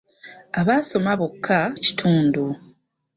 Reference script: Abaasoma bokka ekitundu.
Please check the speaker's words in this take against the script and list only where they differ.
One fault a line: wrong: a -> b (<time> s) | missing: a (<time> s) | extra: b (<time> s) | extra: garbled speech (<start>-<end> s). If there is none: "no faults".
no faults